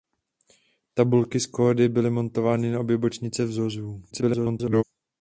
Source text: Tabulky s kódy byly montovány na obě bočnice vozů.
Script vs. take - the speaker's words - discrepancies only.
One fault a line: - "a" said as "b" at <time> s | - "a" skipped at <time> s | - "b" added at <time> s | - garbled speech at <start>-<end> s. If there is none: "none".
- garbled speech at 4.1-4.8 s